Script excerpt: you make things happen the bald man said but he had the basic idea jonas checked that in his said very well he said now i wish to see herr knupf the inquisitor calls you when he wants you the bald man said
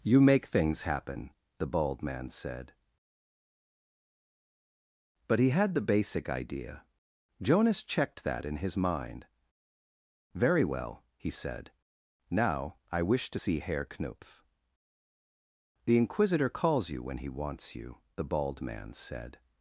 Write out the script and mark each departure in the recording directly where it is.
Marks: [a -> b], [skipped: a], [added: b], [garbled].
you make things happen the bald man said but he had the basic idea jonas checked that in his [said -> mind] very well he said now i wish to see herr knupf the inquisitor calls you when he wants you the bald man said